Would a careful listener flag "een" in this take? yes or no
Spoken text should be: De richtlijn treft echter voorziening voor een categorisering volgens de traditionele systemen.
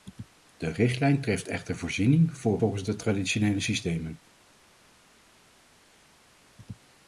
yes